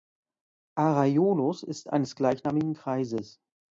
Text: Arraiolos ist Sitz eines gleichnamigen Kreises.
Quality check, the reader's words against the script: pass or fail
fail